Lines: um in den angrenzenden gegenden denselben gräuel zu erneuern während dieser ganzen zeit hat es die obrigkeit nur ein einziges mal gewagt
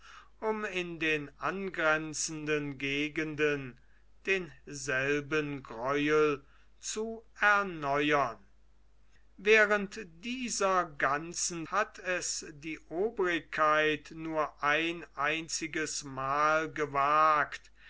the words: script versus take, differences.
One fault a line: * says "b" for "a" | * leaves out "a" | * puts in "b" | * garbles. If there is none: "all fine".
* leaves out "zeit"